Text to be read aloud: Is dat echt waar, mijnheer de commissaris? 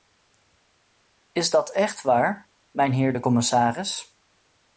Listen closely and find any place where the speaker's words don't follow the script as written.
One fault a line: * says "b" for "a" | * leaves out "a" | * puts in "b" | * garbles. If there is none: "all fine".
all fine